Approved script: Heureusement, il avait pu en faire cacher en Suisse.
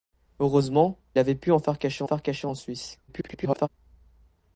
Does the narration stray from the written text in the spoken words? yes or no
yes